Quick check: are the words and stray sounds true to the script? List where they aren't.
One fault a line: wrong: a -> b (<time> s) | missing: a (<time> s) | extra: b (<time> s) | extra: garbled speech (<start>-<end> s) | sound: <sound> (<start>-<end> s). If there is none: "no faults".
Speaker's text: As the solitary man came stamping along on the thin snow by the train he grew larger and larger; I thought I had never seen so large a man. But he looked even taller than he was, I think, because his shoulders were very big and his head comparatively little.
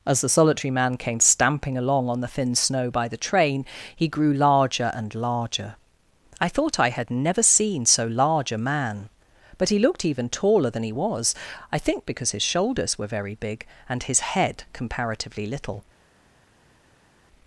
no faults